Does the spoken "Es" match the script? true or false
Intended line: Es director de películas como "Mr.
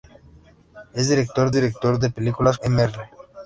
true